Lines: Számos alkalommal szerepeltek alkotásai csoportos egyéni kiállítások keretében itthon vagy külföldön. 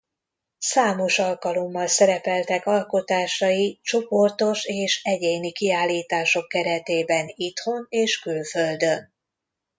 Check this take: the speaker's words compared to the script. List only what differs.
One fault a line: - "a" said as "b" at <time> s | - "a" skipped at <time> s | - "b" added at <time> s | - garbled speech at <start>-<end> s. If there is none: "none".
- "és" added at 4.7 s
- "vagy" said as "és" at 7.9 s